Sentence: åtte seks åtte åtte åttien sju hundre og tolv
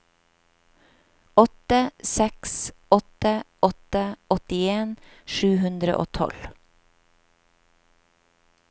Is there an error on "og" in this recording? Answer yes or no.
no